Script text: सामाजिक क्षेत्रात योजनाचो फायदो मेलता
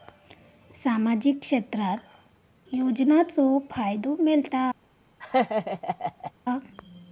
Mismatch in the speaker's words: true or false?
false